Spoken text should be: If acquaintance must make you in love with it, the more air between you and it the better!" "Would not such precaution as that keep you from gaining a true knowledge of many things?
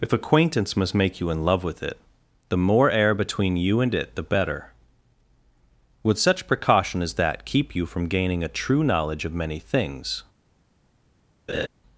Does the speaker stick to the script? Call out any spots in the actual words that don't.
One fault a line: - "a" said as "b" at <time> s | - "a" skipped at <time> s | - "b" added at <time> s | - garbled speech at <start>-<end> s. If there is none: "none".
- "not" skipped at 6.2 s